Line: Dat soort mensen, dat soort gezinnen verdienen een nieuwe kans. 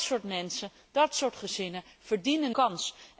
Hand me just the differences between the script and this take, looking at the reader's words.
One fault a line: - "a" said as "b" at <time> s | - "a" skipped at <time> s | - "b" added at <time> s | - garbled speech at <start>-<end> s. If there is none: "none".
- "een nieuwe" skipped at 2.5 s